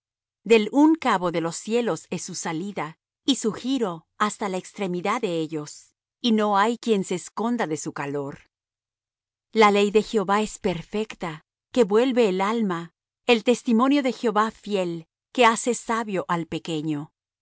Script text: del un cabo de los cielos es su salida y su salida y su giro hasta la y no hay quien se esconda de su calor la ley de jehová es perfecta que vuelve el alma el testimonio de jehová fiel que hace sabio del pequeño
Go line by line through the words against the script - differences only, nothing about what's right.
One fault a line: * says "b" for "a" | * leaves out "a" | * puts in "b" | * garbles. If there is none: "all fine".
* says "giro hasta la extremidad de ellos" for "salida y su giro hasta la"
* says "al" for "del"